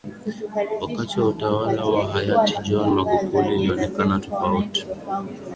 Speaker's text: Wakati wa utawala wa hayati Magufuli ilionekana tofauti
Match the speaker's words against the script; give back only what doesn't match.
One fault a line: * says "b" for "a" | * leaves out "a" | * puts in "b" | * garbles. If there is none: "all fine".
* puts in "John"